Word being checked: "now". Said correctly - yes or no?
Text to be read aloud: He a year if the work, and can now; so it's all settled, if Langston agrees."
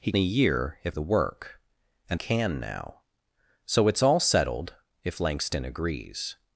yes